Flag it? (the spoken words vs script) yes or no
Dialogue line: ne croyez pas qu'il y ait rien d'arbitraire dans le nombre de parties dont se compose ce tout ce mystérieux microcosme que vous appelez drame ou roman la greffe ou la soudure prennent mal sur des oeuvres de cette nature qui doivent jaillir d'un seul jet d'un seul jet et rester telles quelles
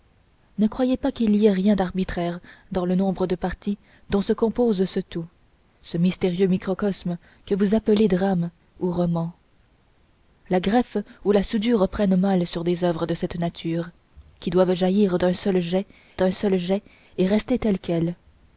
no